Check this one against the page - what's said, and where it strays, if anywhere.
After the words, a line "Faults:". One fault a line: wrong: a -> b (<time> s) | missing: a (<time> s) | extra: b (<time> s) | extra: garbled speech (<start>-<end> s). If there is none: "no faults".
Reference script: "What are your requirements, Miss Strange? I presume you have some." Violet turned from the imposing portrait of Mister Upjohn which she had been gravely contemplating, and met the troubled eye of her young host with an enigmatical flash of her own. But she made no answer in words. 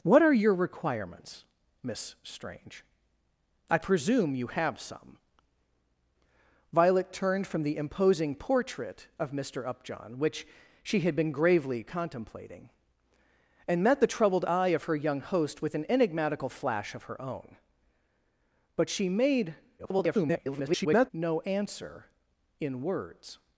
"What are your requirements, Miss Strange? I presume you have some." Violet turned from the imposing portrait of Mister Upjohn which she had been gravely contemplating, and met the troubled eye of her young host with an enigmatical flash of her own. But she made [garbled] no answer in words.
Faults:
extra: garbled speech (19.8-21.1 s)